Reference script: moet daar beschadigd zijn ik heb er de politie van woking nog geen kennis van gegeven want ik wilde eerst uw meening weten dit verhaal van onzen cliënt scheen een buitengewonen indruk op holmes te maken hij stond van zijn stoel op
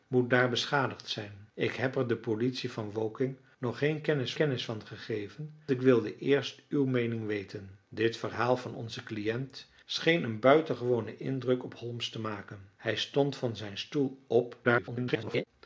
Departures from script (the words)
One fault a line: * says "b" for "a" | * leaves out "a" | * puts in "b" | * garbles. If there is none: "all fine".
* puts in "kennis"
* leaves out "want"
* garbles